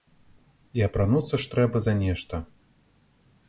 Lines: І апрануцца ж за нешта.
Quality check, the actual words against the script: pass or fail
fail